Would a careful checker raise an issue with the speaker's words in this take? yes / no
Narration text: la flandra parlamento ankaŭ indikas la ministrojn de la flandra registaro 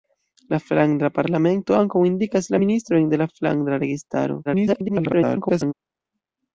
yes